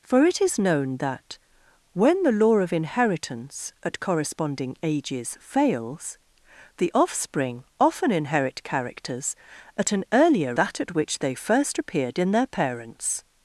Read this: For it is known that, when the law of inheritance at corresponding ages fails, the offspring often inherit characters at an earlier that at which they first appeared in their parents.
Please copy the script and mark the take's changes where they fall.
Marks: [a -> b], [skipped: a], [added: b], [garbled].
For it is known that, when the law of inheritance at corresponding ages fails, the offspring often inherit characters at an earlier that at which they first appeared in their parents.